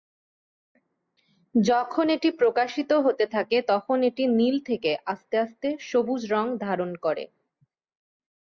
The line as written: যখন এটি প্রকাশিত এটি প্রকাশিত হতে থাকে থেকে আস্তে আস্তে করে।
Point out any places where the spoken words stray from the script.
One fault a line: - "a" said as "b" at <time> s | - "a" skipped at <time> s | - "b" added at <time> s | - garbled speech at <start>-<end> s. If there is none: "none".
- "এটি প্রকাশিত হতে থাকে" said as "হতে থাকে তখন এটি নীল" at 3.0 s
- "সবুজ রঙ ধারণ" added at 5.9 s